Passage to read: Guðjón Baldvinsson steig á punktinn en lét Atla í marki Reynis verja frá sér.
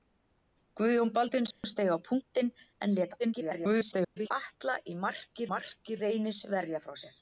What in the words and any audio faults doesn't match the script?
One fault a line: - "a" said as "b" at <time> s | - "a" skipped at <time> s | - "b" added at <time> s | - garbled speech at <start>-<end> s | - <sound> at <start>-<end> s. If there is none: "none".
- dropout at 1.5-1.6 s
- garbled speech at 3.2-4.3 s
- "marki" added at 5.5 s